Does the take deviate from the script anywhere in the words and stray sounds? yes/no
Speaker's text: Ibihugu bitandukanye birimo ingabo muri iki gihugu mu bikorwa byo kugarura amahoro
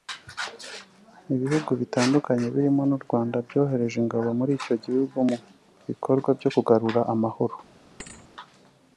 yes